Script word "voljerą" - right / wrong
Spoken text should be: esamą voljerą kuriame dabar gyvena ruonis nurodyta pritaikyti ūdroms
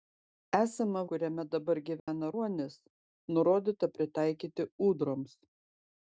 wrong